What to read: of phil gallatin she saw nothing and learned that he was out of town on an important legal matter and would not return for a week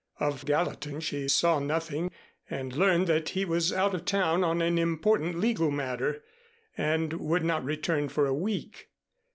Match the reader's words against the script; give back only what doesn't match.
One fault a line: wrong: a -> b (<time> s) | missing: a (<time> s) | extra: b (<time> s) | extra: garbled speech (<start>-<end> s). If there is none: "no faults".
missing: phil (0.4 s)